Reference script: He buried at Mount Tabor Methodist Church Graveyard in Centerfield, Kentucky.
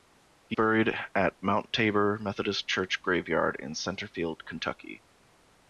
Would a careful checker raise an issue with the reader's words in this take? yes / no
no